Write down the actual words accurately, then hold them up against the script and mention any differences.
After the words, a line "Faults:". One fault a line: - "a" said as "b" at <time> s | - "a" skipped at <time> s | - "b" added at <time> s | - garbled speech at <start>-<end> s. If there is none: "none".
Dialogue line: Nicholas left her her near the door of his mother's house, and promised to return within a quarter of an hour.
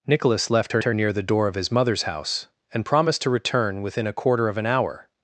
Nicholas left her her near the door of his mother's house, and promised to return within a quarter of an hour.
Faults:
none